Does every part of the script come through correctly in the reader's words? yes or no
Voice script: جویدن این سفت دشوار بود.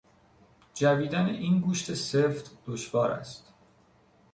no